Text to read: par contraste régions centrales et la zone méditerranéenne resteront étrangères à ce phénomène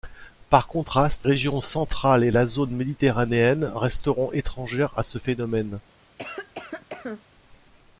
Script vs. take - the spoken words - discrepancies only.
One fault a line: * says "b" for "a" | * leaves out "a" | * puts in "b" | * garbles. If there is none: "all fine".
all fine